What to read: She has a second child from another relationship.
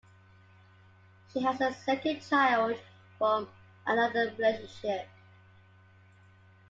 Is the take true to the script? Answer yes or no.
yes